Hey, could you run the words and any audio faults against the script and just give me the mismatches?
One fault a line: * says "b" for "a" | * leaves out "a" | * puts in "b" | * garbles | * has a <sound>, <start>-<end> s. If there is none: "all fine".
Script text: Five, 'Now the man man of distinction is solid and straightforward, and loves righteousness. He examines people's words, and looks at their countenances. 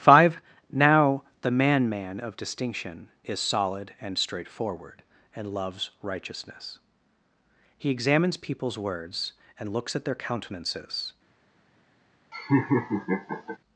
* has a laugh, 12.3-13.6 s